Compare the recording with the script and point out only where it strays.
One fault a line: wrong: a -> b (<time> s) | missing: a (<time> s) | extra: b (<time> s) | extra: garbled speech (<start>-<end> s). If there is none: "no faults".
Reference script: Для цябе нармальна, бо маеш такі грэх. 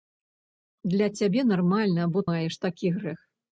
no faults